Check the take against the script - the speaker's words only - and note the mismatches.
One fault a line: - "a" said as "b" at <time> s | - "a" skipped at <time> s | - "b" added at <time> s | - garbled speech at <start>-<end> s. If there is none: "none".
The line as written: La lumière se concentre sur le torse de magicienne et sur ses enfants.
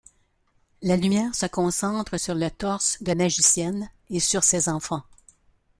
none